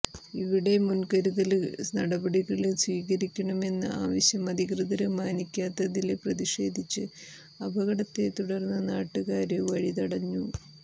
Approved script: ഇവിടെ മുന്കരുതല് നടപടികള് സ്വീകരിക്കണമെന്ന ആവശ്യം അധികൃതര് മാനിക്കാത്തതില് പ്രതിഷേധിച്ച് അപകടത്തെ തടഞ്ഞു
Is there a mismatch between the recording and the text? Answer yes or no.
yes